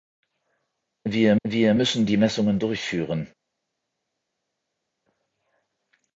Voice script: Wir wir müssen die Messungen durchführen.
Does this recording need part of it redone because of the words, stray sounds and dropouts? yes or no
no